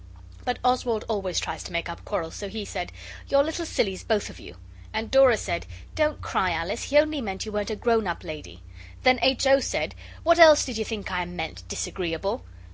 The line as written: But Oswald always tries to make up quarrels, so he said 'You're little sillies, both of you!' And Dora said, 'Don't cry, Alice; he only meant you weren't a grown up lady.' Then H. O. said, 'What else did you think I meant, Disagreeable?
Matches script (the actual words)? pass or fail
pass